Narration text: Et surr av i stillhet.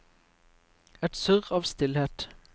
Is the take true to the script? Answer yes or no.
yes